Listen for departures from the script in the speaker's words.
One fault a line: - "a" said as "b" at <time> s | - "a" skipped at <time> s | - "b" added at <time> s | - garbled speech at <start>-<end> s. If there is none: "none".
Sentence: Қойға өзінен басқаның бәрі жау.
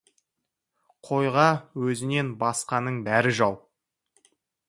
none